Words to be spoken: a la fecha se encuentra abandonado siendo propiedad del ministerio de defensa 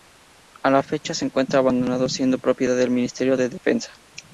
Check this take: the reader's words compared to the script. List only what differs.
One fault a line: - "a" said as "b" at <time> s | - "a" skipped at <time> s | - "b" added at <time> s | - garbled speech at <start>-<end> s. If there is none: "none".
none